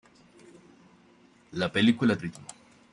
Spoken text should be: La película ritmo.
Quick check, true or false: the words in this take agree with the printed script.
true